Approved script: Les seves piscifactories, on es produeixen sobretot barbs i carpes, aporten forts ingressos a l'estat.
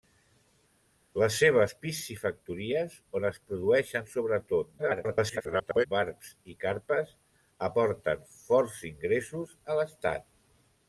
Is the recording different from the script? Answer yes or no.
yes